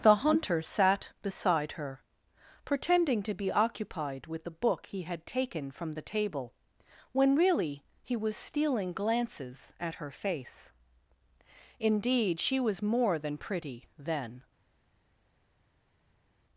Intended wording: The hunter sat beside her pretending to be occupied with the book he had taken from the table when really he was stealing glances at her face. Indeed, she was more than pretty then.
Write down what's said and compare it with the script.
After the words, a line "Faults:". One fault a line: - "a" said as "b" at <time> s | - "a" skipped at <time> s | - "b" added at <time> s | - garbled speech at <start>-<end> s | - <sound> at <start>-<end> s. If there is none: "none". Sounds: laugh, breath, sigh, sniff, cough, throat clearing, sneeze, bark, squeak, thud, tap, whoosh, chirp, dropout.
The hunter sat beside her pretending to be occupied with the book he had taken from the table when really he was stealing glances at her face. Indeed, she was more than pretty then.
Faults:
none